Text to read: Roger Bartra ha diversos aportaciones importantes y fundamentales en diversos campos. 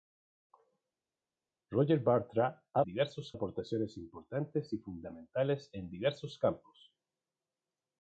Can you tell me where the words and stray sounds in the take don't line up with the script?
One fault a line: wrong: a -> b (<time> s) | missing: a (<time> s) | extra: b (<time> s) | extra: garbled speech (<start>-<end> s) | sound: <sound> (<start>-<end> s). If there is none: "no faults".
no faults